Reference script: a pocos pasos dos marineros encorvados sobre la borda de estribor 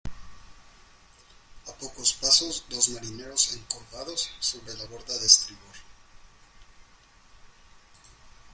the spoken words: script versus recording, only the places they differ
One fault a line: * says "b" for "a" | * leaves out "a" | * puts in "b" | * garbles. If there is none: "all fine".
all fine